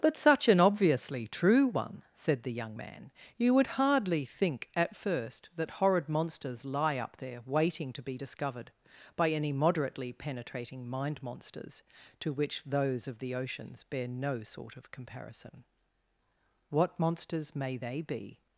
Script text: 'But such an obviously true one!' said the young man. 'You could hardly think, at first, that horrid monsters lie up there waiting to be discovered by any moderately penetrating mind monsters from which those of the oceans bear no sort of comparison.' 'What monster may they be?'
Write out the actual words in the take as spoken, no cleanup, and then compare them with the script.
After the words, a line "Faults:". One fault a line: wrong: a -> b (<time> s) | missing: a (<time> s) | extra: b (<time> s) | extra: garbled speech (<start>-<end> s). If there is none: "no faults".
'But such an obviously true one!' said the young man. 'You would hardly think, at first, that horrid monsters lie up there waiting to be discovered by any moderately penetrating mind monsters to which those of the oceans bear no sort of comparison.' 'What monsters may they be?'
Faults:
wrong: could -> would (3.5 s)
wrong: from -> to (12.2 s)
wrong: monster -> monsters (17.0 s)